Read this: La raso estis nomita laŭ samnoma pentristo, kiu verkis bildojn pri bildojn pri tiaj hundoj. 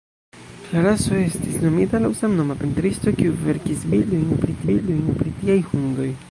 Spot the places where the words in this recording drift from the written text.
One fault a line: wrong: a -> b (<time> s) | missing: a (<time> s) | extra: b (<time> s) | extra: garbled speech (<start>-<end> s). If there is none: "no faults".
no faults